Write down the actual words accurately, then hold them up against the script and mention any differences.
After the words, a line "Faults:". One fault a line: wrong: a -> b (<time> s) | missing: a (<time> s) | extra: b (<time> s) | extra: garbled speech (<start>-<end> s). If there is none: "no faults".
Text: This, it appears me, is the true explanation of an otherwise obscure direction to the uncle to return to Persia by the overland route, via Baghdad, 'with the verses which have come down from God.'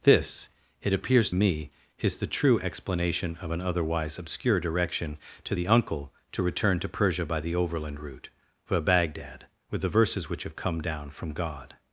This, it appears me, is the true explanation of an otherwise obscure direction to the uncle to return to Persia by the overland route, via Baghdad, 'with the verses which have come down from God.'
Faults:
no faults